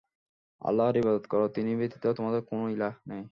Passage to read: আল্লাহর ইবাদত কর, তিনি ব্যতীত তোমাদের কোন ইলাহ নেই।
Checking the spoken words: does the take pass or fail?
pass